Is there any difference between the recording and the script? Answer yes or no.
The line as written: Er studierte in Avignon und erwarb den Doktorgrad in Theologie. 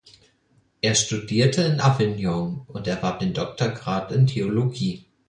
no